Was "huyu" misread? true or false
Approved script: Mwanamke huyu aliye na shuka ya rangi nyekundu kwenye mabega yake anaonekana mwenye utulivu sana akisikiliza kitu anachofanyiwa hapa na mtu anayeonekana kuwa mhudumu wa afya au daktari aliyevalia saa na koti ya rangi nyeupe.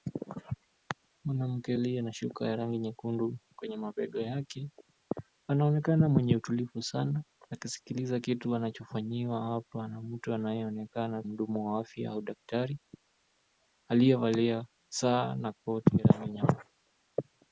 true